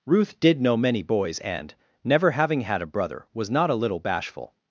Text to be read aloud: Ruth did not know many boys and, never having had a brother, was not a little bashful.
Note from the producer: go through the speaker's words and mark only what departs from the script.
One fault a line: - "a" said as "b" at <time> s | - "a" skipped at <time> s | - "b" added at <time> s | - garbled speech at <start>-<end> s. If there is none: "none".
- "not" skipped at 0.6 s